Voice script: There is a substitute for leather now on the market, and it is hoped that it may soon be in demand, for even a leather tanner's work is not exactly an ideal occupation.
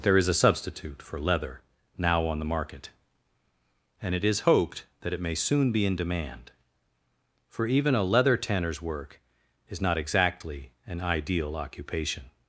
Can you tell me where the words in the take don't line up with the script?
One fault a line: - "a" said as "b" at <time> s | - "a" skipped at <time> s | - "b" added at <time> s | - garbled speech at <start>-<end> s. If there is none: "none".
none